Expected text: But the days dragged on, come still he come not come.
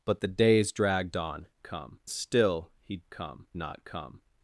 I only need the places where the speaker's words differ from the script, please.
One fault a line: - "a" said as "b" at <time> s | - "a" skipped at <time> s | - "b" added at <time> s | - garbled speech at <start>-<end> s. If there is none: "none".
none